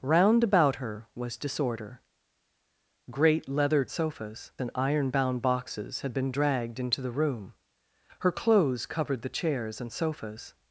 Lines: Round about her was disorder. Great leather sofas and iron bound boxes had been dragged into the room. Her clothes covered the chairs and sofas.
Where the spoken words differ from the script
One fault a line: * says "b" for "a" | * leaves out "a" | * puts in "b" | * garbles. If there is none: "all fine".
all fine